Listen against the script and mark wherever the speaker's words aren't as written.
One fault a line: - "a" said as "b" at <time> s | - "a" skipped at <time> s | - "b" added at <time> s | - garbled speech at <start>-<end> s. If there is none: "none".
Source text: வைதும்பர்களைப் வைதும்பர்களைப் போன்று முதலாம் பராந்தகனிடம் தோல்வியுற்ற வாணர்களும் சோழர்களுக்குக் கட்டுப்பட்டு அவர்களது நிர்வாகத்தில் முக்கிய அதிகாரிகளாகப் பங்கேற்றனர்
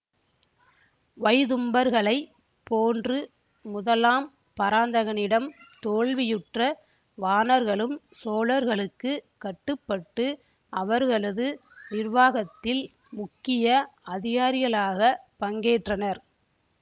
- "வைதும்பர்களைப்" skipped at 2.3 s